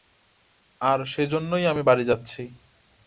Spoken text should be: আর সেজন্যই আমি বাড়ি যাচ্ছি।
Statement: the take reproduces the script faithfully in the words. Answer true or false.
true